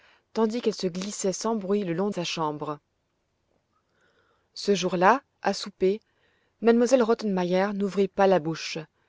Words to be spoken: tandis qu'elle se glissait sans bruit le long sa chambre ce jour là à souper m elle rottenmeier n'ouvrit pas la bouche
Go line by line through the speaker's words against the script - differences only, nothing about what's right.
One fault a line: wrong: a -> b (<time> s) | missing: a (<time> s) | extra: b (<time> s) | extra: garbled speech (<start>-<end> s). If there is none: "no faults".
no faults